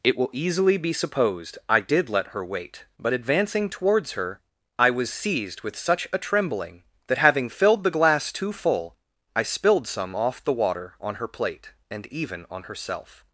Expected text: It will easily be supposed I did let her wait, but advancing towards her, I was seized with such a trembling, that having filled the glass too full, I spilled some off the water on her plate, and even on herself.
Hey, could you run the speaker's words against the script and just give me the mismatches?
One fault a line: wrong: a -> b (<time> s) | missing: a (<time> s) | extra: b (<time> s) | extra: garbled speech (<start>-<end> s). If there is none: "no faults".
no faults